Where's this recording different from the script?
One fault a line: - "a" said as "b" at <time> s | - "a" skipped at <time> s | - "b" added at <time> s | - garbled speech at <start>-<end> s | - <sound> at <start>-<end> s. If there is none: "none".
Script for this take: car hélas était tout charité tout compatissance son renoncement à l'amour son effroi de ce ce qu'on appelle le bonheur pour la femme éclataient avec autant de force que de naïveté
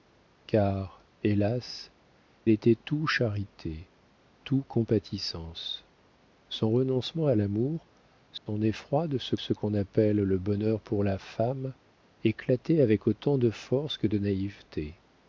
- dropout at 8.4-8.5 s